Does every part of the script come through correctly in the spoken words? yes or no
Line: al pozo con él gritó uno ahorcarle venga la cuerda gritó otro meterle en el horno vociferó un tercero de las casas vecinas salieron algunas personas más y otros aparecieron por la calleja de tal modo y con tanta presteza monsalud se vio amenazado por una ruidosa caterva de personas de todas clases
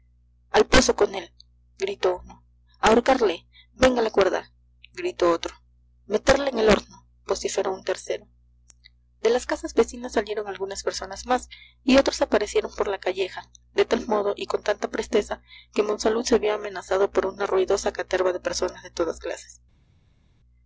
no